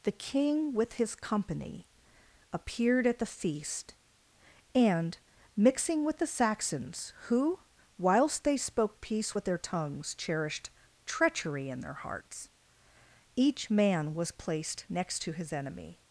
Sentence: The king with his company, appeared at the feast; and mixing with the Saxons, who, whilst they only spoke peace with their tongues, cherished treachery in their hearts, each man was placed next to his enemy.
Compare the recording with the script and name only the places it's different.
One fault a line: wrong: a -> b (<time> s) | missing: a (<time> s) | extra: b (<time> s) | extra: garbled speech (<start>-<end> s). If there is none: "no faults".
missing: only (8.6 s)